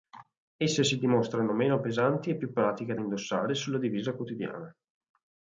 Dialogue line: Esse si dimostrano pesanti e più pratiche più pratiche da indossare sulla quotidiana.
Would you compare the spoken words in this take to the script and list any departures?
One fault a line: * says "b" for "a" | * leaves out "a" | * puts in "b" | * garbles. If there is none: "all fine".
* puts in "meno"
* leaves out "più pratiche"
* puts in "divisa"